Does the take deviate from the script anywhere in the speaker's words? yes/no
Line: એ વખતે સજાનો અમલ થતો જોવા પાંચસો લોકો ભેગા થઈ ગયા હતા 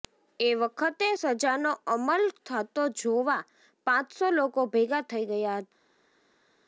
no